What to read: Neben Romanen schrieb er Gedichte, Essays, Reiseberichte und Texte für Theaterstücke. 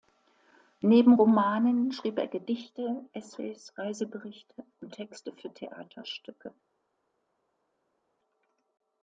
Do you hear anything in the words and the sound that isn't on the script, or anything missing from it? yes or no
no